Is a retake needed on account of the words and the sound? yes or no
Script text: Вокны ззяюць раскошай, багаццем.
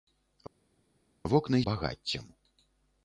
yes